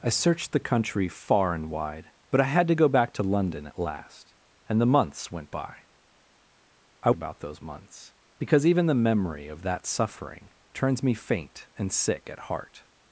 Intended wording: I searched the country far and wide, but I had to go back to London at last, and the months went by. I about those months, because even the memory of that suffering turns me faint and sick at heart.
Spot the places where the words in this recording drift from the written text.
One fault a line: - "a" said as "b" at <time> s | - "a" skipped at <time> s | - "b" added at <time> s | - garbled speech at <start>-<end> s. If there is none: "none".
none